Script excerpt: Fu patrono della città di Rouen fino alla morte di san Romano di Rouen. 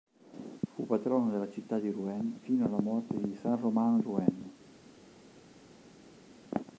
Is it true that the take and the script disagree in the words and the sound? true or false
true